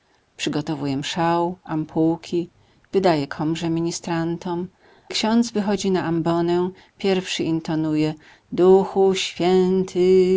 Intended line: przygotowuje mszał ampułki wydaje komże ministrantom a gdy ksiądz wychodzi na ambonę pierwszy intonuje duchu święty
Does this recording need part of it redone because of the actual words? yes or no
yes